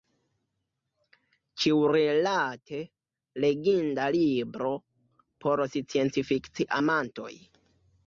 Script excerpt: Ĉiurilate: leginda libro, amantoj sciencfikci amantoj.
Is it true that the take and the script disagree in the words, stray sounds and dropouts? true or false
true